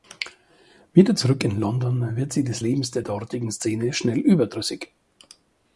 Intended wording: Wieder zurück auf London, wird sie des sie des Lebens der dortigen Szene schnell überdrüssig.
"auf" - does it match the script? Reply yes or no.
no